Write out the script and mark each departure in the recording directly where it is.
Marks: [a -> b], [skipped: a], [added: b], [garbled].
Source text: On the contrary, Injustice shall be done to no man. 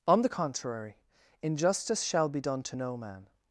On the contrary, Injustice shall be done to no man.